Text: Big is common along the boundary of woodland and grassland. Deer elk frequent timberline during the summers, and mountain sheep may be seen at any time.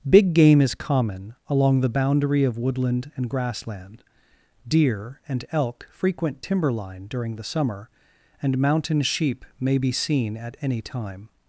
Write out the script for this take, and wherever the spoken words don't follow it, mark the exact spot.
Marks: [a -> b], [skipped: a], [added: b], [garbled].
Big [added: game] is common along the boundary of woodland and grassland. Deer [added: and] elk frequent timberline during the [summers, -> summer] and mountain sheep may be seen at any time.